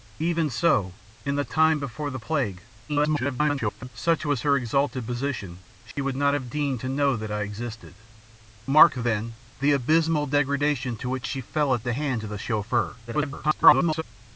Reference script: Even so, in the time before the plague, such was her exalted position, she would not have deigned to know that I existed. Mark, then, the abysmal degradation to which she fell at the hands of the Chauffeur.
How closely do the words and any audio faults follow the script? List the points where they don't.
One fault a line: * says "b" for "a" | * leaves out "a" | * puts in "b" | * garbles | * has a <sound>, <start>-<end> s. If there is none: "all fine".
* garbles
* has a dropout, 5.9-6.0 s
* garbles